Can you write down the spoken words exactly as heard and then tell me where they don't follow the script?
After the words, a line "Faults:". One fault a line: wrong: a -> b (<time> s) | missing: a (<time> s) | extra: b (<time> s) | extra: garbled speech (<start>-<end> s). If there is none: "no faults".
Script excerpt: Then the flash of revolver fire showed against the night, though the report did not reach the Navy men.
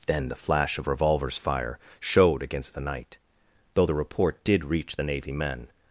Then the flash of revolvers fire showed against the night, though the report did reach the Navy men.
Faults:
wrong: revolver -> revolvers (0.9 s)
missing: not (4.6 s)